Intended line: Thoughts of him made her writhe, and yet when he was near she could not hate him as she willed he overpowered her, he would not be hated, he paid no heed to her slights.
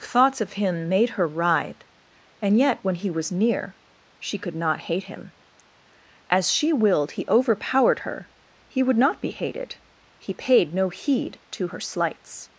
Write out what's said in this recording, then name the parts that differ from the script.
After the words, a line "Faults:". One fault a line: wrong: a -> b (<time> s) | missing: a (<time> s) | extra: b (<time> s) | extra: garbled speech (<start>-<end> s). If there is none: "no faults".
Thoughts of him made her writhe, and yet when he was near she could not hate him as she willed he overpowered her, he would not be hated, he paid no heed to her slights.
Faults:
no faults